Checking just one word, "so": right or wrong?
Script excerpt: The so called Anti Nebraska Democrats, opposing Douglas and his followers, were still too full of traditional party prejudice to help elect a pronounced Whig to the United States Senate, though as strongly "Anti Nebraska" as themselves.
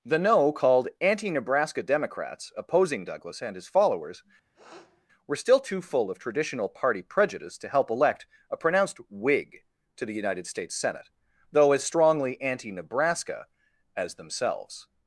wrong